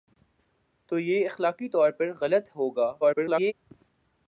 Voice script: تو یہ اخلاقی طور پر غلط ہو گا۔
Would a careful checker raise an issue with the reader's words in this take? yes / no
yes